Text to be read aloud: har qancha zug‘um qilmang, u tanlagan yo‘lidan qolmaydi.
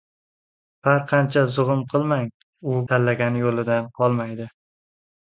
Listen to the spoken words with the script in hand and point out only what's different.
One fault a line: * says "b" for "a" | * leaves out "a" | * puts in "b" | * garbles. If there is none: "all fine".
all fine